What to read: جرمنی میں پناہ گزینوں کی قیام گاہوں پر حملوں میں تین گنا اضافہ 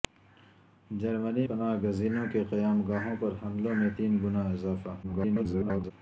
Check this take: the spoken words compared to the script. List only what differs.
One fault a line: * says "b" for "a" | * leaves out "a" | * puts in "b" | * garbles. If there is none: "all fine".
* leaves out "میں"
* garbles